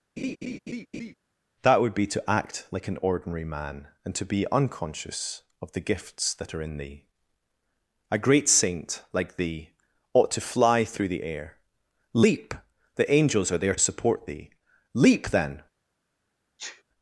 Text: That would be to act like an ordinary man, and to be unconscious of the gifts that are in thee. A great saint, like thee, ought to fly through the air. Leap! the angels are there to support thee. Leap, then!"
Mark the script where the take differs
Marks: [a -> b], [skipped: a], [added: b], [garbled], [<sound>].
[laugh] That would be to act like an ordinary man, and to be unconscious of the gifts that are in thee. A great saint, like thee, ought to fly through the air. Leap! the angels are there [skipped: to] support thee. Leap, then!" [sneeze]